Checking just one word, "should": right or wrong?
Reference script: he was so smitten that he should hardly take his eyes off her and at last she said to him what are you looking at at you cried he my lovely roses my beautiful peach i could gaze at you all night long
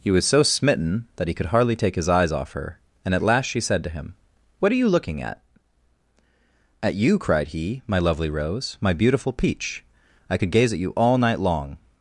wrong